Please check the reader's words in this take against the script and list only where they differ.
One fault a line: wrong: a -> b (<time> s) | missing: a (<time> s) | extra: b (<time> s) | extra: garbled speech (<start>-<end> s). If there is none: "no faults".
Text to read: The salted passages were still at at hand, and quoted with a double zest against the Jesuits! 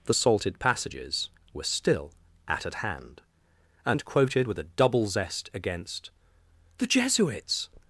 no faults